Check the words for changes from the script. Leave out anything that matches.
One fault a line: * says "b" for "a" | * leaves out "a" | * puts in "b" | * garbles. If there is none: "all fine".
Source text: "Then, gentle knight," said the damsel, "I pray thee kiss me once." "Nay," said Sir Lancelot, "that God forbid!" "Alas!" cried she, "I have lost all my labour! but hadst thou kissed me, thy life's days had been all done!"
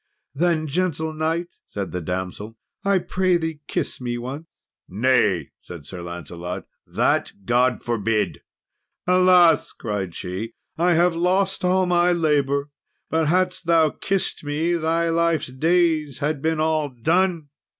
all fine